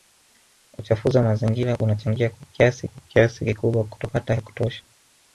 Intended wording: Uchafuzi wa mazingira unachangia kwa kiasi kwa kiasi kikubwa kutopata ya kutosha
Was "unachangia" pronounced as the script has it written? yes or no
yes